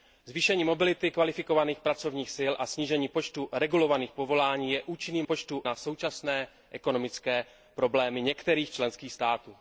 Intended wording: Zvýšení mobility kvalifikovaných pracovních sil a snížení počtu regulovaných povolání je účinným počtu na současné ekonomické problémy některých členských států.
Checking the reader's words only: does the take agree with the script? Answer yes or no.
yes